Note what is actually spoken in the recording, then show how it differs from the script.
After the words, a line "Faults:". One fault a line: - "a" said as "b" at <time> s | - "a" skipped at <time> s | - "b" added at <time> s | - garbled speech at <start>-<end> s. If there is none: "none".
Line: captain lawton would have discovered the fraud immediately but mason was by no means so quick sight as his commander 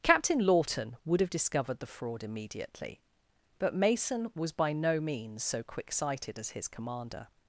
captain lawton would have discovered the fraud immediately but mason was by no means so quick sighted as his commander
Faults:
- "sight" said as "sighted" at 5.9 s